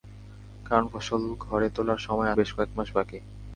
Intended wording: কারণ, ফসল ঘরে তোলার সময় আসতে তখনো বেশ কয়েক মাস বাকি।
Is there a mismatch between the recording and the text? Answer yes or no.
yes